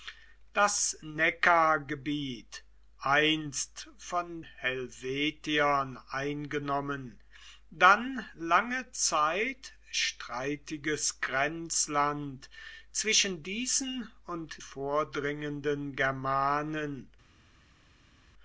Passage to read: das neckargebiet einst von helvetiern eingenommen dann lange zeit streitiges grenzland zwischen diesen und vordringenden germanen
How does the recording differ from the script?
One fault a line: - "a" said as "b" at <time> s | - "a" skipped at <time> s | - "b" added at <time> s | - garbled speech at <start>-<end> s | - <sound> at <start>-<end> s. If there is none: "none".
none